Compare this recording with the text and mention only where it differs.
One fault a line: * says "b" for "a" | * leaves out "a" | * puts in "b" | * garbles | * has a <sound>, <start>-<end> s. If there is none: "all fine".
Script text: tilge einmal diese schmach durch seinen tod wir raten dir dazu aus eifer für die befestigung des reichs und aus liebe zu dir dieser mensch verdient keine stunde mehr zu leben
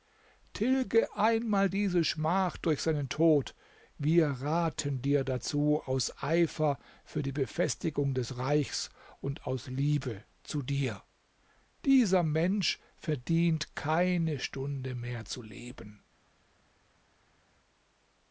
all fine